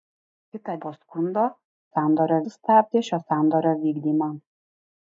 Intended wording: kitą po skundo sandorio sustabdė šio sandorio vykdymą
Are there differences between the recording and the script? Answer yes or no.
no